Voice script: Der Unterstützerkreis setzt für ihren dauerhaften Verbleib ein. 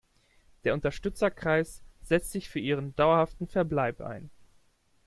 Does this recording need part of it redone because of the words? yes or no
yes